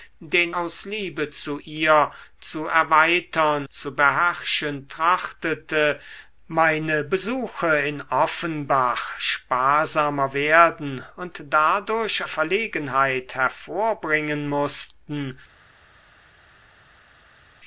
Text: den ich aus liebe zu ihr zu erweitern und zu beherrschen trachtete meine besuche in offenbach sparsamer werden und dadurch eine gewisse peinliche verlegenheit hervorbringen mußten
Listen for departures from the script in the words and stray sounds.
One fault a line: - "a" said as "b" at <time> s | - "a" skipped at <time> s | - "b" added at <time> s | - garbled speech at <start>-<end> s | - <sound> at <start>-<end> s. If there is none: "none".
- "ich" skipped at 0.6 s
- "und" skipped at 3.7 s
- "eine gewisse peinliche" skipped at 12.2 s